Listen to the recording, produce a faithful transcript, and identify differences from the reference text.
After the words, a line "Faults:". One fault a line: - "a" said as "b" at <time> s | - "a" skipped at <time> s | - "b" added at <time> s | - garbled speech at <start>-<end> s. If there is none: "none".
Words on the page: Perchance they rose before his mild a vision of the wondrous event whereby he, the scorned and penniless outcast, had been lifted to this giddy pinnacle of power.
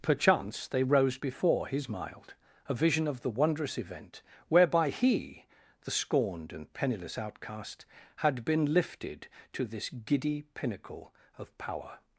Perchance they rose before his mild a vision of the wondrous event whereby he, the scorned and penniless outcast, had been lifted to this giddy pinnacle of power.
Faults:
none